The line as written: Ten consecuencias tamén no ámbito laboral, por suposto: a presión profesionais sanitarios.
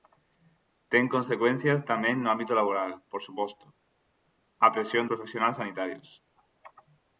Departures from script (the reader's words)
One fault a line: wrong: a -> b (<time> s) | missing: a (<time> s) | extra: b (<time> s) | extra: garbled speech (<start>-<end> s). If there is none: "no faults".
no faults